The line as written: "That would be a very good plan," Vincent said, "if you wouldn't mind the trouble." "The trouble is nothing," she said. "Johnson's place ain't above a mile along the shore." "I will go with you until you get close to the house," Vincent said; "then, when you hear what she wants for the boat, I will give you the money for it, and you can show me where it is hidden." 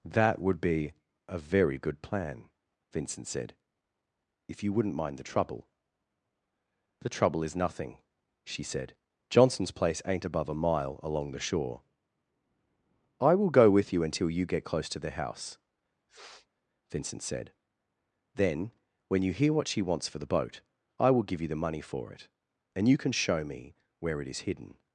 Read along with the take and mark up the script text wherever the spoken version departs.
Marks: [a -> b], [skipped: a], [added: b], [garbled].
"That would be a very good plan," Vincent said, "if you wouldn't mind the trouble." "The trouble is nothing," she said. "Johnson's place ain't above a mile along the shore." "I will go with you until you get close to the house," Vincent said; "then, when you hear what she wants for the boat, I will give you the money for it, and you can show me where it is hidden."